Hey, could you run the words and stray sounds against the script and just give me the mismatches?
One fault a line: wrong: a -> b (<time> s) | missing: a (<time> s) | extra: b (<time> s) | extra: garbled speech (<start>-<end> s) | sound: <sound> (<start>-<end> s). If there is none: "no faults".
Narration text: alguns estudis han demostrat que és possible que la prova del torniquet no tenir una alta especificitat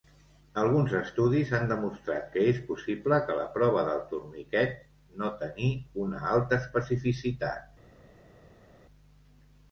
no faults